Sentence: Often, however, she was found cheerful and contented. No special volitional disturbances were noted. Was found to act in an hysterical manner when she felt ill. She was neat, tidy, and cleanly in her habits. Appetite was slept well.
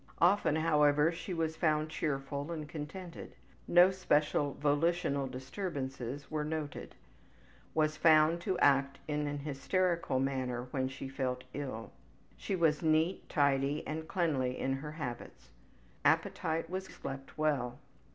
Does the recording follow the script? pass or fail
pass